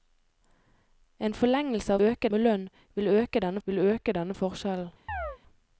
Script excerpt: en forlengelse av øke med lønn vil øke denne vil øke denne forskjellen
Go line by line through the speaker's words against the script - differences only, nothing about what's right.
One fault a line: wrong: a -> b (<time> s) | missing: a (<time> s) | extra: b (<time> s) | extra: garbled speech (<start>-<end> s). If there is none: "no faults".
no faults